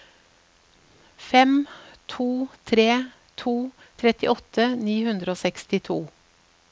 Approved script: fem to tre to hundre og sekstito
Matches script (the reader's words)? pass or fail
fail